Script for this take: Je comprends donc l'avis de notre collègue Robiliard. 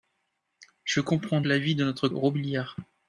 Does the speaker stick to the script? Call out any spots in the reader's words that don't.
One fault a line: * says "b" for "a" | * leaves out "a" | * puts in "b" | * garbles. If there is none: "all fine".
* leaves out "donc"
* leaves out "collègue"